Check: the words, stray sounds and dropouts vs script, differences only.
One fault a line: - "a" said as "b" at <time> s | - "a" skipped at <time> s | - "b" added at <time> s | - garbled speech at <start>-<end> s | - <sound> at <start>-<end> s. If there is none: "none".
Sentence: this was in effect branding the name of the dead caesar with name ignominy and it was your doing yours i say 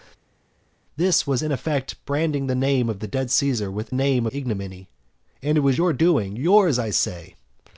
none